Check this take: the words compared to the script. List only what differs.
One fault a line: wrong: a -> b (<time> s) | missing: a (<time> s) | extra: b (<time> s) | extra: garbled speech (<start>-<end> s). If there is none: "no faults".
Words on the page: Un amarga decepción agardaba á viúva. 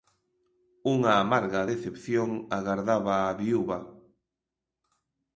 wrong: Un -> Unha (0.9 s)